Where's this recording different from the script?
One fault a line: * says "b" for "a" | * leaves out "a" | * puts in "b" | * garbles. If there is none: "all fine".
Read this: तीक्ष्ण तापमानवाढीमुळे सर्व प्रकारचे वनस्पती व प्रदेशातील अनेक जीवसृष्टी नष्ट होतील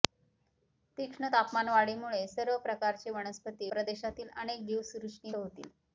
* leaves out "व"
* leaves out "नष्ट"